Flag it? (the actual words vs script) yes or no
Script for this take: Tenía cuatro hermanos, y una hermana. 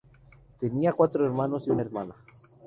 no